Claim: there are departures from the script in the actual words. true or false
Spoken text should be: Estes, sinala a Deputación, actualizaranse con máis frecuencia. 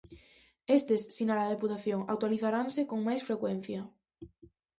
false